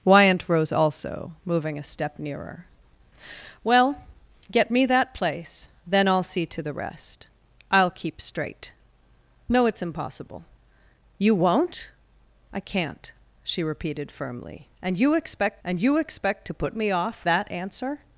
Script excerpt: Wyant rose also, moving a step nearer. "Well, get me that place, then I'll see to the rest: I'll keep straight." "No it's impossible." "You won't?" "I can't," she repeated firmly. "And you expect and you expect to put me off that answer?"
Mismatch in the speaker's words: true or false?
false